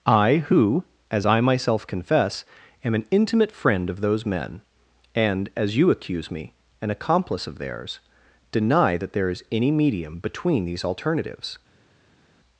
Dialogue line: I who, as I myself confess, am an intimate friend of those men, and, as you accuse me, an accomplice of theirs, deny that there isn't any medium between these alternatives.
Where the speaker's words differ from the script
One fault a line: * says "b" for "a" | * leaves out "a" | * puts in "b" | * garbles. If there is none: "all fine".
* says "is" for "isn't"